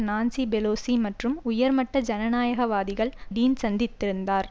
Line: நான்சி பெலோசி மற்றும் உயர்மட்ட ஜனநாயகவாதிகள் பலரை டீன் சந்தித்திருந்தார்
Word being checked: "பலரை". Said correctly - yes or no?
no